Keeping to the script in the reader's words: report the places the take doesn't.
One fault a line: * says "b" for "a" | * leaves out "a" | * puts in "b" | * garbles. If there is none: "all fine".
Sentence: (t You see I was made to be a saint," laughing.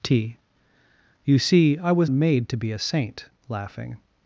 all fine